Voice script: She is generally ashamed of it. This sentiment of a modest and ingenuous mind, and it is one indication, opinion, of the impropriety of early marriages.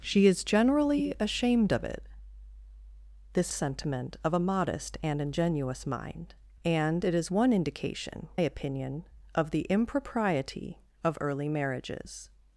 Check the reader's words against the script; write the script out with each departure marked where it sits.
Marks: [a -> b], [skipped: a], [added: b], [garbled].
She is generally ashamed of it. This sentiment of a modest and ingenuous mind, and it is one indication, opinion, of the impropriety of early marriages.